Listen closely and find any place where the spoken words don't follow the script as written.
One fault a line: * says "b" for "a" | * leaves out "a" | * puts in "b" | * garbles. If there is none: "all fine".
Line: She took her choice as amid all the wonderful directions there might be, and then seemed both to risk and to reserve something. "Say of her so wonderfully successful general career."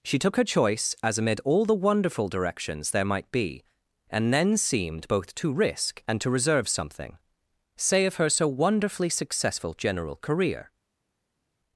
all fine